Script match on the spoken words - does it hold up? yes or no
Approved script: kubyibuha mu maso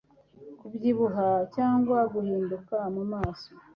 no